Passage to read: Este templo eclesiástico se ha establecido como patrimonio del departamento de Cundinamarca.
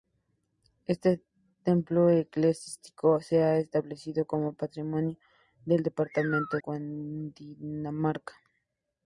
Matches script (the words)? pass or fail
fail